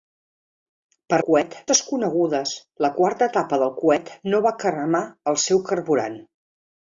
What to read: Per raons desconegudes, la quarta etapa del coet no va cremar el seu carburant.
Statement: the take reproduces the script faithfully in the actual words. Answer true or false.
false